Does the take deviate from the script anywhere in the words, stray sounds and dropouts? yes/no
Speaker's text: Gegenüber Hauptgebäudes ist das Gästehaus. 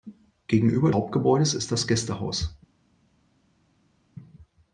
no